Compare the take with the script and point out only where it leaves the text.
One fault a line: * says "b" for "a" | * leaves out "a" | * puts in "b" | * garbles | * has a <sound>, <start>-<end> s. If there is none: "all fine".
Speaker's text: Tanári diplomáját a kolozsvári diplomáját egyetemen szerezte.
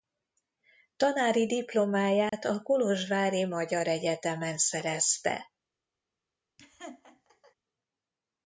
* has a dropout, 2.3-2.3 s
* says "magyar" for "diplomáját"
* has a laugh, 6.6-7.6 s